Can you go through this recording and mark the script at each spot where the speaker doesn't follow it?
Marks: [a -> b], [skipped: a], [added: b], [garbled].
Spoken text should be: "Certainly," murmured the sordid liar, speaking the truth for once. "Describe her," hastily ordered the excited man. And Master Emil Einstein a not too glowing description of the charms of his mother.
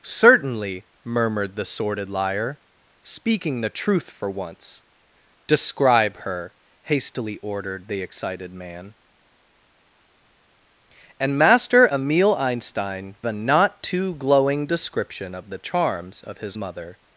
"Certainly," murmured the sordid liar, speaking the truth for once. "Describe her," hastily ordered the excited man. And Master Emil Einstein a not too glowing description of the charms of his mother.